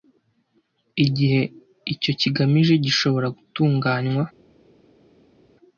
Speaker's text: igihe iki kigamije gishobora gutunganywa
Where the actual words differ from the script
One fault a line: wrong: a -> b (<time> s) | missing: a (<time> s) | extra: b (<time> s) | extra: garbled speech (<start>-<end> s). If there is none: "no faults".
wrong: iki -> icyo (1.9 s)